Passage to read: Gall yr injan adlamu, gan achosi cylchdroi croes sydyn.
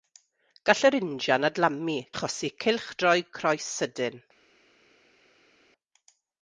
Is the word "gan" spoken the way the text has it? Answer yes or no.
no